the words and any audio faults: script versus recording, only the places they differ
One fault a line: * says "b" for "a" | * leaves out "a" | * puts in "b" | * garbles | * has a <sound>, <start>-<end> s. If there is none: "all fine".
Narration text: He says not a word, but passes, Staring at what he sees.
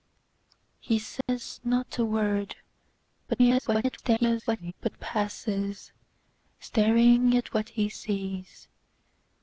* has a dropout, 1.2-1.3 s
* garbles